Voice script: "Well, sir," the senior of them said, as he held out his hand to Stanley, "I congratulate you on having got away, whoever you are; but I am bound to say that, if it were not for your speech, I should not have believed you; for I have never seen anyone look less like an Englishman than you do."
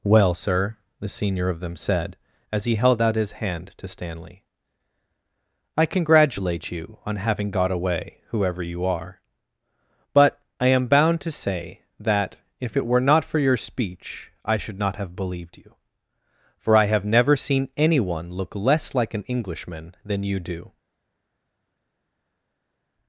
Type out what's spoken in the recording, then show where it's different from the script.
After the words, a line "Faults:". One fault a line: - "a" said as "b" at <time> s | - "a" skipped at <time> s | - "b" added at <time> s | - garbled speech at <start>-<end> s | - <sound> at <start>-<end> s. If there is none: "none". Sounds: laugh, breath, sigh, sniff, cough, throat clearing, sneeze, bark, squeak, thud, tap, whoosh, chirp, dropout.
"Well, sir," the senior of them said, as he held out his hand to Stanley, "I congratulate you on having got away, whoever you are; but I am bound to say that, if it were not for your speech, I should not have believed you; for I have never seen anyone look less like an Englishman than you do."
Faults:
none